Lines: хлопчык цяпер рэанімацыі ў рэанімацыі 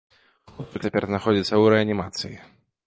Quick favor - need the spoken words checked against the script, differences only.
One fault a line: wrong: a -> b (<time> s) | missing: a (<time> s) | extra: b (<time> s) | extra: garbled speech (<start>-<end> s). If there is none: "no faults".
wrong: рэанімацыі -> знаходзіцца (1.1 s)